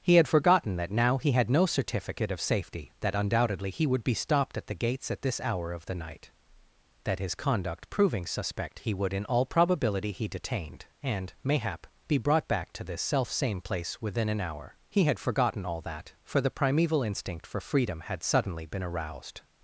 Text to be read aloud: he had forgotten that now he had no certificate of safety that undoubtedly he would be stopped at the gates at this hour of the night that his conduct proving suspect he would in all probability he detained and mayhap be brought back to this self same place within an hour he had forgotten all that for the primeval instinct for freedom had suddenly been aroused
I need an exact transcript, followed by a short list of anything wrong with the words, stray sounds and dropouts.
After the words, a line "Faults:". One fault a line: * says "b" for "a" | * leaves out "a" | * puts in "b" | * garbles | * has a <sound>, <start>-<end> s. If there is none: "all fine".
he had forgotten that now he had no certificate of safety that undoubtedly he would be stopped at the gates at this hour of the night that his conduct proving suspect he would in all probability he detained and mayhap be brought back to this self same place within an hour he had forgotten all that for the primeval instinct for freedom had suddenly been aroused
Faults:
all fine